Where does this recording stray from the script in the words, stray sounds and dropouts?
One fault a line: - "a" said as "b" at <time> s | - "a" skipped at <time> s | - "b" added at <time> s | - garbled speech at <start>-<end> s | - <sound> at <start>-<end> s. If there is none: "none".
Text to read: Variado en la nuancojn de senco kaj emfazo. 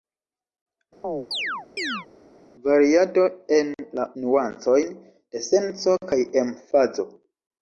- chirp at 1.0-2.1 s